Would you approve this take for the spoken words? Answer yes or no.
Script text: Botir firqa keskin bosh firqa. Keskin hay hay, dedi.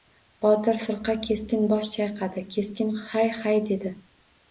no